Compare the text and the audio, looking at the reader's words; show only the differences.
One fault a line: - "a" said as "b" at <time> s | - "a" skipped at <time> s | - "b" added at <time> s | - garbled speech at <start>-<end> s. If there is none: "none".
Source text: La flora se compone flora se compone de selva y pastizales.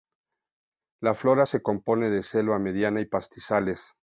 - "flora se compone" skipped at 2.1 s
- "mediana" added at 2.6 s